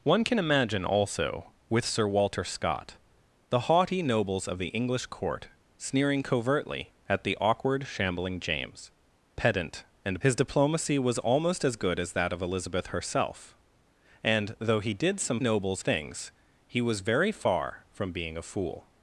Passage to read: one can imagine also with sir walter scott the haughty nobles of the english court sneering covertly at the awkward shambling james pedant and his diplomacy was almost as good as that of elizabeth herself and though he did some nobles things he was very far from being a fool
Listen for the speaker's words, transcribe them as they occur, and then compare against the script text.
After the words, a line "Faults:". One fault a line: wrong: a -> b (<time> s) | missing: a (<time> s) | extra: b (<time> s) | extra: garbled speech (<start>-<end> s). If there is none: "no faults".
one can imagine also with sir walter scott the haughty nobles of the english court sneering covertly at the awkward shambling james pedant and his diplomacy was almost as good as that of elizabeth herself and though he did some nobles things he was very far from being a fool
Faults:
no faults